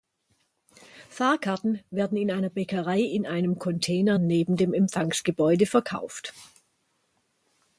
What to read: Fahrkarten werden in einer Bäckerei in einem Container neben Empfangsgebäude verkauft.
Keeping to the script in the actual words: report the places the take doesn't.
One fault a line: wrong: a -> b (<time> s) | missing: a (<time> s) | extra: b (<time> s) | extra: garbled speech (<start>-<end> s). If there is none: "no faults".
extra: dem (4.6 s)